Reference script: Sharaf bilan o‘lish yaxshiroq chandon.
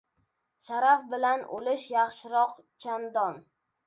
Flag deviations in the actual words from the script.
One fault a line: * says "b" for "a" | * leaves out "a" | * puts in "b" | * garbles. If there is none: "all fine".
all fine